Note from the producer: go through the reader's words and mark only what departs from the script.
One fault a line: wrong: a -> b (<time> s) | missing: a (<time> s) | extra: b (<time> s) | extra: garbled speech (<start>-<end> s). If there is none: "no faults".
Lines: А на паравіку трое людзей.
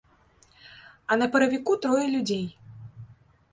no faults